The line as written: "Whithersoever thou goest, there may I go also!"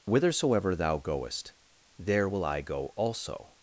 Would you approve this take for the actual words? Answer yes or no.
no